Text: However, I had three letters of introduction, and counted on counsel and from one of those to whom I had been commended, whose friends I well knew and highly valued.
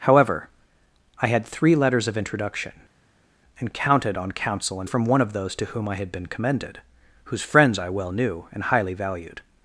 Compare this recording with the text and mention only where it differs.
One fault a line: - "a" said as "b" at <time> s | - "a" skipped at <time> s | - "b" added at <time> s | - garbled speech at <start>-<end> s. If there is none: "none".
none